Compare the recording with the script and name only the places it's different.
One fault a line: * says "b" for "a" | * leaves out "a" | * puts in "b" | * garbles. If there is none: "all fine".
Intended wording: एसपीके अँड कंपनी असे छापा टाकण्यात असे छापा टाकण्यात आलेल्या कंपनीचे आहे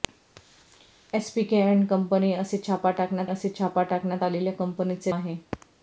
all fine